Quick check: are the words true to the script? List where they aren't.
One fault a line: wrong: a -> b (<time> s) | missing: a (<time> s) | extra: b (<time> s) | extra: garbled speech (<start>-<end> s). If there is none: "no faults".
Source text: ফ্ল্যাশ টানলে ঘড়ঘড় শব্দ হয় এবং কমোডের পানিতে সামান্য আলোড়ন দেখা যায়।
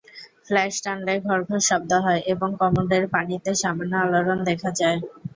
no faults